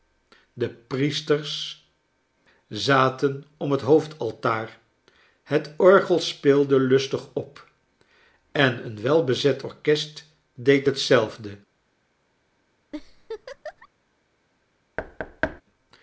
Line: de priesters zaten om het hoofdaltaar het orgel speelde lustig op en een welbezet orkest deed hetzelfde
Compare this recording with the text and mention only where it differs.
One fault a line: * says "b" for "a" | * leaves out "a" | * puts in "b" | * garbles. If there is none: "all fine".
all fine